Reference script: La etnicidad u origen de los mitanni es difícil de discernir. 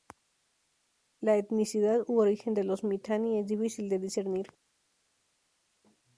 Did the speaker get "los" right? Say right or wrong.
right